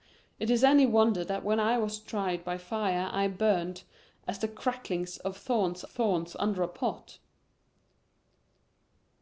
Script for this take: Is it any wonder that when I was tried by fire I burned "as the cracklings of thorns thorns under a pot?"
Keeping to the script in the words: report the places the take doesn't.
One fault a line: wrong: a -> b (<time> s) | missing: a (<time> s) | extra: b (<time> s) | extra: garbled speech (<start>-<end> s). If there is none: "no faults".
no faults